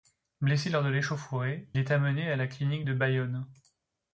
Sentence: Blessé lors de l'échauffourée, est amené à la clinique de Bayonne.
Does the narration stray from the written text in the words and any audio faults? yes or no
no